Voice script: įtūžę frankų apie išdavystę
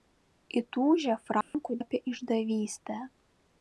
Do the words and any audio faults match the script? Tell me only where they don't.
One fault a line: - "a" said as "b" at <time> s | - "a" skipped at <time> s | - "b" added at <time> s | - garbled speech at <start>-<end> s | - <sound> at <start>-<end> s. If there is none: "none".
- dropout at 1.4-1.5 s